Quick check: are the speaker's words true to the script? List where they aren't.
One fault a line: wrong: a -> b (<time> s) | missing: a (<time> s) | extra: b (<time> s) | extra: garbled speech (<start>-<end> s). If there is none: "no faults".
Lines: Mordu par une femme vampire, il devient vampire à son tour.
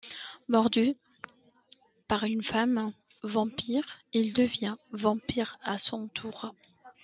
no faults